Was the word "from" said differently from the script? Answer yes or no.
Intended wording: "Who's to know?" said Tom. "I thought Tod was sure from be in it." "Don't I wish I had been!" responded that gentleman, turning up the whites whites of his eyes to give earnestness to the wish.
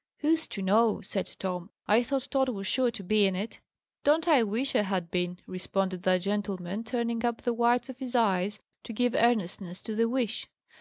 yes